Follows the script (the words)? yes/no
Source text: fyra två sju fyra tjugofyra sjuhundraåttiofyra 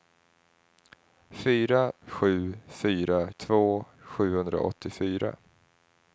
no